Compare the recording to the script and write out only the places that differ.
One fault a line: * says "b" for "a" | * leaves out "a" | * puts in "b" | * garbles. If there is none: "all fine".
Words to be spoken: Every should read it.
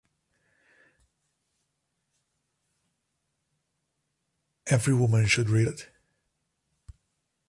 * puts in "woman"